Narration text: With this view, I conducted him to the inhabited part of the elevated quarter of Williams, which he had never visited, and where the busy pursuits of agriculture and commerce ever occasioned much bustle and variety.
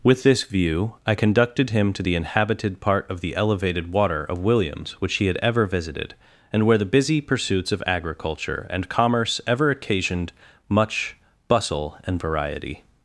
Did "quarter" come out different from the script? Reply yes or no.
yes